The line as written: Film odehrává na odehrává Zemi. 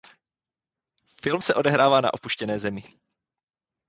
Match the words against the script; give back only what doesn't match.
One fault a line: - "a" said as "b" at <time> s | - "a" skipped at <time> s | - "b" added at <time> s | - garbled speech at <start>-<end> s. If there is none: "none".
- "se" added at 1.4 s
- "odehrává" said as "opuštěné" at 2.1 s